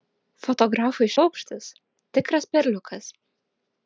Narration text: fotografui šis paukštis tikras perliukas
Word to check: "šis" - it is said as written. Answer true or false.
false